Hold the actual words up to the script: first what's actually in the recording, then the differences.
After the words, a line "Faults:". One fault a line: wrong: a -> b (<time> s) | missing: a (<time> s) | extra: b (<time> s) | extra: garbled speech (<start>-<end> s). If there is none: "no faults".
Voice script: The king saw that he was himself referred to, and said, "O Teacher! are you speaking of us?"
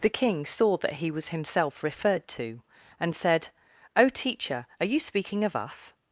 The king saw that he was himself referred to, and said, "O Teacher! are you speaking of us?"
Faults:
no faults